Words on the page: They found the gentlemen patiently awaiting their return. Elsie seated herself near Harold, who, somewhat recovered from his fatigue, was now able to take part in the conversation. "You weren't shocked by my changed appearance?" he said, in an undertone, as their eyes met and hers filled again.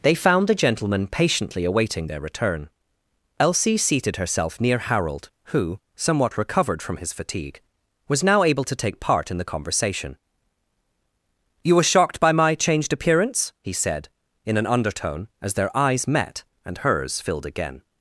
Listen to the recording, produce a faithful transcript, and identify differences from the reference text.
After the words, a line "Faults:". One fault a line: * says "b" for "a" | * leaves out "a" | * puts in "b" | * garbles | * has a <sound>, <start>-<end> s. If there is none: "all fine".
They found the gentlemen patiently awaiting their return. Elsie seated herself near Harold, who, somewhat recovered from his fatigue, was now able to take part in the conversation. "You were shocked by my changed appearance?" he said, in an undertone, as their eyes met and hers filled again.
Faults:
* says "were" for "weren't"